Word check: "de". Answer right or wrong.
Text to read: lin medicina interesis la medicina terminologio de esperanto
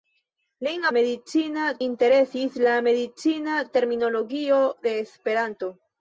right